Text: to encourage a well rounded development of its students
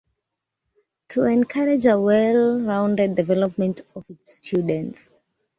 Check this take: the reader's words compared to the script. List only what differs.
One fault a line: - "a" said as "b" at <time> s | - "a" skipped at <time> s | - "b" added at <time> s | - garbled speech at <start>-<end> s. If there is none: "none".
none